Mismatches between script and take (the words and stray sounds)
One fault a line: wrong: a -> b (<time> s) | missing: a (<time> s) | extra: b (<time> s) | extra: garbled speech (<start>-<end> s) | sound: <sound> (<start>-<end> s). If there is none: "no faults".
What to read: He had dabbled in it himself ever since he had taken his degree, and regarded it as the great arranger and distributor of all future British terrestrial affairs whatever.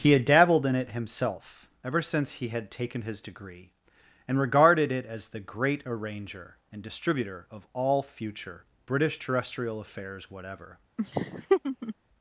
sound: laugh (11.0-11.9 s)